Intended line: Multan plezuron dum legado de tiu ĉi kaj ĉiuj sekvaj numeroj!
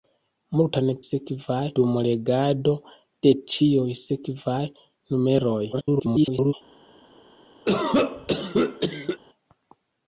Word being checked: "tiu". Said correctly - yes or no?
no